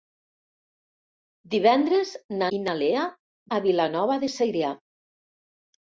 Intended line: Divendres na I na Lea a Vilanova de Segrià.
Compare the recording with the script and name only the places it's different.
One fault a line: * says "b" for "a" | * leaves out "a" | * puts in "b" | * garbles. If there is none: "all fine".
all fine